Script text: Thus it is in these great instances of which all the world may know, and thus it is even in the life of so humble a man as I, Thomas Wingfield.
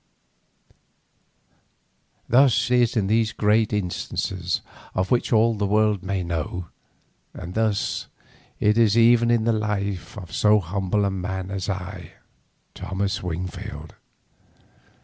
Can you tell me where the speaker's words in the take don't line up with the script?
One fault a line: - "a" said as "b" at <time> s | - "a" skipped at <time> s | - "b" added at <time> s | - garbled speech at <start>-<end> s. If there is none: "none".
- "it" skipped at 2.7 s